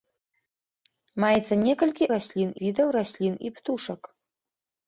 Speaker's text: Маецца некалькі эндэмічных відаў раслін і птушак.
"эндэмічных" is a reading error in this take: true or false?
true